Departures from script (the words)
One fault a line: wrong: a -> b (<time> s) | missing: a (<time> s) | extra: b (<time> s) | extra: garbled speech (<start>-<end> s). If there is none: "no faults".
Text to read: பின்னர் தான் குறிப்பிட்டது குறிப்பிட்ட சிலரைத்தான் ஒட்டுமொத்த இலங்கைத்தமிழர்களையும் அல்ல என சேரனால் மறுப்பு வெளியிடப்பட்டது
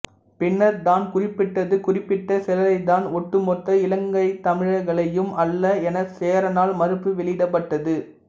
no faults